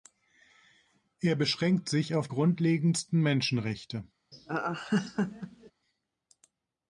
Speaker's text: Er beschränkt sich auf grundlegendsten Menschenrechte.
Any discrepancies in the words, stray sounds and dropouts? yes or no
yes